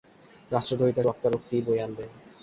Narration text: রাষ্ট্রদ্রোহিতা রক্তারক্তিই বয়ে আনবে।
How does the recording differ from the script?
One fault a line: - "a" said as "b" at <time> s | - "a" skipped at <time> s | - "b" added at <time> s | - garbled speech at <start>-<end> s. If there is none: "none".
none